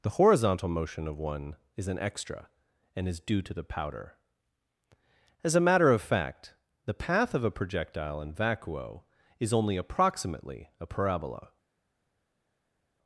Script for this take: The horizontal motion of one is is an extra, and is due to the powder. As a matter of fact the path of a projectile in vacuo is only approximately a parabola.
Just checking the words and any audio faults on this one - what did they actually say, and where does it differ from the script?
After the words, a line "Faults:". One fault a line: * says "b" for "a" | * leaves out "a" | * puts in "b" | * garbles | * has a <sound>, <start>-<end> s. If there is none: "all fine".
The horizontal motion of one is an extra, and is due to the powder. As a matter of fact the path of a projectile in vacuo is only approximately a parabola.
Faults:
* leaves out "is"